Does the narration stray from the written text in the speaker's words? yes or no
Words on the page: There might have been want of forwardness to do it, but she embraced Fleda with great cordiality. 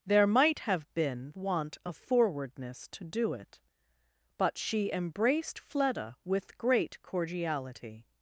no